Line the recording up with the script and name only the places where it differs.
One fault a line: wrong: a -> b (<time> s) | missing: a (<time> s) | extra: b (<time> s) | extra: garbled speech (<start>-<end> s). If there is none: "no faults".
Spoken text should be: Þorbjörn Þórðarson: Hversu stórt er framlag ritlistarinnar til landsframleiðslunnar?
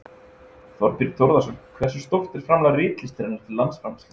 no faults